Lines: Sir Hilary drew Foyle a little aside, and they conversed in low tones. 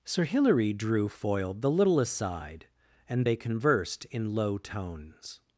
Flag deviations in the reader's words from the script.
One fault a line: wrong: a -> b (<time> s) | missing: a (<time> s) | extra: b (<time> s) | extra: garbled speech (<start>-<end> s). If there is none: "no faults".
wrong: a -> the (1.5 s)